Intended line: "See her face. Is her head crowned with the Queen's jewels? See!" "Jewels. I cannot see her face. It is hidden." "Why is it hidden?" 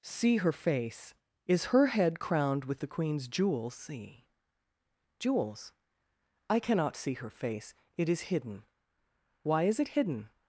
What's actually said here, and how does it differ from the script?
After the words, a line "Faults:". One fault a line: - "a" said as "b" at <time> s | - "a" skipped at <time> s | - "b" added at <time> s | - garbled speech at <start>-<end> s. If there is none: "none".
"See her face. Is her head crowned with the Queen's jewels? See!" "Jewels. I cannot see her face. It is hidden." "Why is it hidden?"
Faults:
none